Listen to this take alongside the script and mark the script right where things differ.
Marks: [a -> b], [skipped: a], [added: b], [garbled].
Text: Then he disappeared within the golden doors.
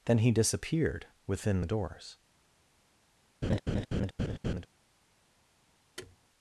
Then he disappeared within the [skipped: golden] doors.